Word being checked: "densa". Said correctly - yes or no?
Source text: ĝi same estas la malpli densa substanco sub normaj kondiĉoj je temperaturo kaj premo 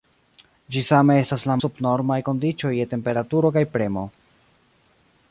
no